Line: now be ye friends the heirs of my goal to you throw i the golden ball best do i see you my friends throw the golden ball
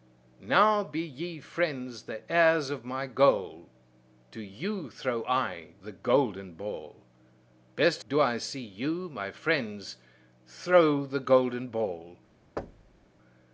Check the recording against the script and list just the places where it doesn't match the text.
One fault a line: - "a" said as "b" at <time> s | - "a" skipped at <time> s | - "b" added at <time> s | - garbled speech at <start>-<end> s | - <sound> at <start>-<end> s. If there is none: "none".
- thud at 12.6-13.1 s